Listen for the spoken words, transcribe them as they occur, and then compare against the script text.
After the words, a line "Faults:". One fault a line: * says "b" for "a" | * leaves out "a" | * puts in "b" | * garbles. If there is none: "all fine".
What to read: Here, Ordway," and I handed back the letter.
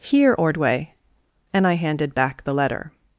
Here, Ordway," and I handed back the letter.
Faults:
all fine